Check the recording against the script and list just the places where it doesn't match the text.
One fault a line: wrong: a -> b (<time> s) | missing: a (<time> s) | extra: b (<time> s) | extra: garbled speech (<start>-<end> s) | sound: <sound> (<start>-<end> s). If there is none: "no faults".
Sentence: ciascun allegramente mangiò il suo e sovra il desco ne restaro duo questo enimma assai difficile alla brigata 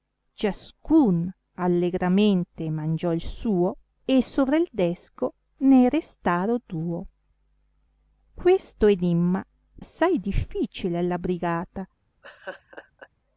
sound: laugh (12.2-13.1 s)